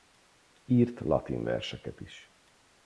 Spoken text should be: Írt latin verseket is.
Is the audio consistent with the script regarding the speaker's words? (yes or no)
yes